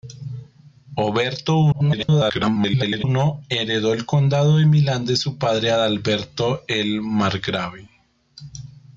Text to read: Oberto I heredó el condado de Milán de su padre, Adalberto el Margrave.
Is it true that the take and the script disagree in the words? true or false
true